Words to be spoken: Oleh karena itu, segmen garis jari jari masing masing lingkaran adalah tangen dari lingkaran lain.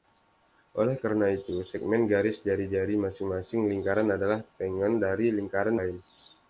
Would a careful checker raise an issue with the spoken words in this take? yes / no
no